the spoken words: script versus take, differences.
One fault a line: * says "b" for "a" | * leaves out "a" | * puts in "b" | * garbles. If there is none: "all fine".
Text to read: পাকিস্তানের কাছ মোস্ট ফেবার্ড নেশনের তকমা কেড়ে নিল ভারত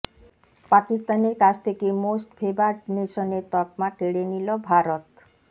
* puts in "থেকে"